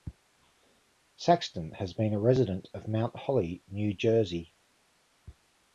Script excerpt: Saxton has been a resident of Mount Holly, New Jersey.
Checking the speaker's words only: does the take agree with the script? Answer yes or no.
yes